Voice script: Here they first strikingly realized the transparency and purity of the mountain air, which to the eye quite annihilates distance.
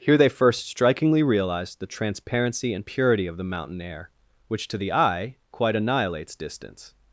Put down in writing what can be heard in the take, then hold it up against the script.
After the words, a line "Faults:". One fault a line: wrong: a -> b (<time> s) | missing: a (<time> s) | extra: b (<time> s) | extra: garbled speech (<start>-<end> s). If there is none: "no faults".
Here they first strikingly realized the transparency and purity of the mountain air, which to the eye quite annihilates distance.
Faults:
no faults